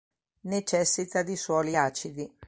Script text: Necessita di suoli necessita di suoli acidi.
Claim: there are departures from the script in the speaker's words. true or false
true